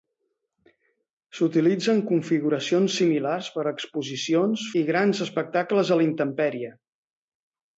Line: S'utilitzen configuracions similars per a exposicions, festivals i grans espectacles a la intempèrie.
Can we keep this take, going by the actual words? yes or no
no